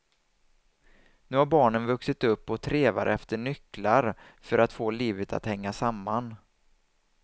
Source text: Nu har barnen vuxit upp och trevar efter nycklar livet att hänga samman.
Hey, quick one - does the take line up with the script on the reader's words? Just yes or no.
no